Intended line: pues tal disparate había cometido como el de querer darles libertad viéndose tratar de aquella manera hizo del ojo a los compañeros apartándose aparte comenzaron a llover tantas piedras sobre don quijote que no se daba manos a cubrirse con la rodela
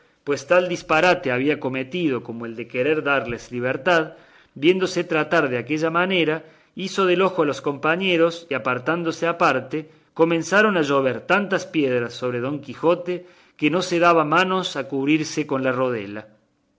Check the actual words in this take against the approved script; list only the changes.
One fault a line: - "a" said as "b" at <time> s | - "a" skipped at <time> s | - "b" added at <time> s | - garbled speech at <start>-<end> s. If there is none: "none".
none